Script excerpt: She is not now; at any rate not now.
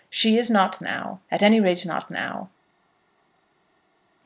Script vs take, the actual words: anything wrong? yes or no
no